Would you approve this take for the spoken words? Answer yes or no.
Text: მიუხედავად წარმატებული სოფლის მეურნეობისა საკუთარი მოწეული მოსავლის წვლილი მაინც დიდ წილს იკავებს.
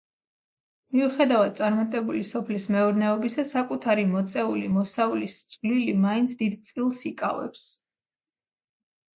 yes